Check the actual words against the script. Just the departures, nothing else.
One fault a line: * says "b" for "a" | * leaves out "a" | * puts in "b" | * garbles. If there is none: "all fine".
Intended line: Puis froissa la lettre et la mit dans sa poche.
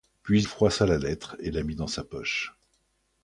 all fine